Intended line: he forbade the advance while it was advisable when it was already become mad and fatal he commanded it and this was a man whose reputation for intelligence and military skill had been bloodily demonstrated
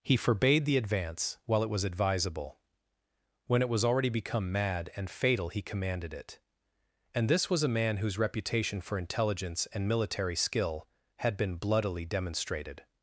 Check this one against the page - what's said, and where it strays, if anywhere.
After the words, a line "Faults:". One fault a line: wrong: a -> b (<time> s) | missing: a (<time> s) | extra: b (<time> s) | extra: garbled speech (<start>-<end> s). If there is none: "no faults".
he forbade the advance while it was advisable when it was already become mad and fatal he commanded it and this was a man whose reputation for intelligence and military skill had been bloodily demonstrated
Faults:
no faults